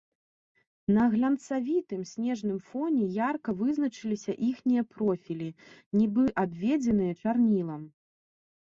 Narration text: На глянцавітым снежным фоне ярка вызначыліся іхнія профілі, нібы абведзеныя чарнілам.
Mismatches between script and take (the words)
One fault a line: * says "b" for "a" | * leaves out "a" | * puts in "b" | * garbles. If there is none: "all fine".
all fine